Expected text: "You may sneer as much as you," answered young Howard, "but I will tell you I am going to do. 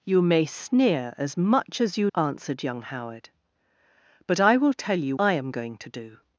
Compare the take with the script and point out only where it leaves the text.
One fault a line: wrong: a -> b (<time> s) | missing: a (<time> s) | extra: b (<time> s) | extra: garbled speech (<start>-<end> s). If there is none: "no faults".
no faults